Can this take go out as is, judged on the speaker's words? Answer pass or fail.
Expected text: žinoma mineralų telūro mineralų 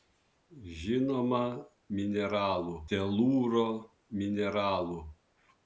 pass